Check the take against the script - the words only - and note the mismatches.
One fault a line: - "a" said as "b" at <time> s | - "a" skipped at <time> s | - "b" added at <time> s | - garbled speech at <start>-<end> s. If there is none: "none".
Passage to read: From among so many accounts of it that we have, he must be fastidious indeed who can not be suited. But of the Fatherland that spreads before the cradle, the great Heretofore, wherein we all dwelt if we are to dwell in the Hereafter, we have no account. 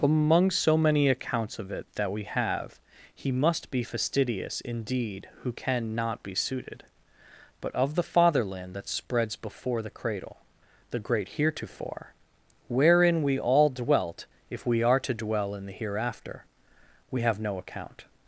- "From" skipped at 0.0 s